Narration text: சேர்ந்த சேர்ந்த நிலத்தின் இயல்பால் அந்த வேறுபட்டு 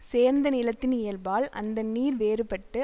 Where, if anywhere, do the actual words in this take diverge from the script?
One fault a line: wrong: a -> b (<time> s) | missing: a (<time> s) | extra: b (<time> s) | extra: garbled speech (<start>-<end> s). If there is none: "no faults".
missing: சேர்ந்த (0.5 s)
extra: நீர் (1.8 s)